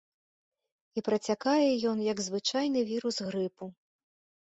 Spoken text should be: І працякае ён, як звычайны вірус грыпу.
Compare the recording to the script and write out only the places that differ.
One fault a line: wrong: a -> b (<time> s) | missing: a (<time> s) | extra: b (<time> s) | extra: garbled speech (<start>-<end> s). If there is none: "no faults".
no faults